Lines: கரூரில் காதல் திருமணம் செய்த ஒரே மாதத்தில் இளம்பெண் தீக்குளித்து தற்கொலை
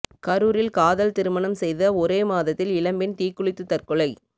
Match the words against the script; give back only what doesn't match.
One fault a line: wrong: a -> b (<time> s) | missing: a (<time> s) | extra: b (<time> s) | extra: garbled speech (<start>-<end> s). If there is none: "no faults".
no faults